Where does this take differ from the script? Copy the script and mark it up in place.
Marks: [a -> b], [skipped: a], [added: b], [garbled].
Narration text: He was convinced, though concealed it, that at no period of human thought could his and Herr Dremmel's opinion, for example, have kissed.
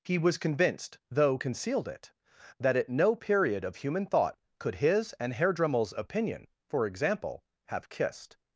He was convinced, though concealed it, that at no period of human thought could his and Herr Dremmel's opinion, for example, have kissed.